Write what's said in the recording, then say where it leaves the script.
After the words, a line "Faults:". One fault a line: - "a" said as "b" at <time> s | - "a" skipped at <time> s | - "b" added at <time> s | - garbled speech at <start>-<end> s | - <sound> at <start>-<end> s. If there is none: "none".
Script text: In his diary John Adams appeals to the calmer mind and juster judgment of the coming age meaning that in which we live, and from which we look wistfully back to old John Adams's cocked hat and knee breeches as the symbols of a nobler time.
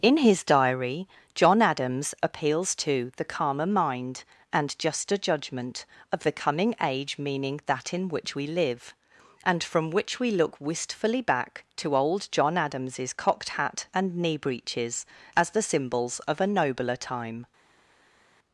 In his diary John Adams appeals to the calmer mind and juster judgment of the coming age meaning that in which we live, and from which we look wistfully back to old John Adams's cocked hat and knee breeches as the symbols of a nobler time.
Faults:
none